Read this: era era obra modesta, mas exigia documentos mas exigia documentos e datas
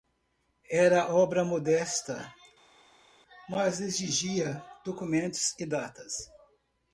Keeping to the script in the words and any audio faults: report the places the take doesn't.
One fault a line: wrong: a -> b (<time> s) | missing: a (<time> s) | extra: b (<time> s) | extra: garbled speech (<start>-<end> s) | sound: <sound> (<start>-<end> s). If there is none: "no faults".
missing: era (1.1 s)
missing: mas exigia documentos (5.6 s)